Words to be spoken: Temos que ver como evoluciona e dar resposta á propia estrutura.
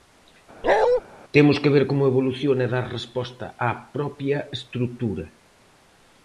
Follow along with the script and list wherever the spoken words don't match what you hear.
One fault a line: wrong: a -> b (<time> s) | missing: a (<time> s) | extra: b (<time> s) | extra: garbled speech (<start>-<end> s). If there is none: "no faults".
no faults